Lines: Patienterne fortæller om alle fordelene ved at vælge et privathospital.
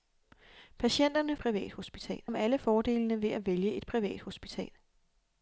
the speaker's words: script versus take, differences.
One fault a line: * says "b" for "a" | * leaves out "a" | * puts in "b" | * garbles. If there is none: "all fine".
* says "privathospital" for "fortæller"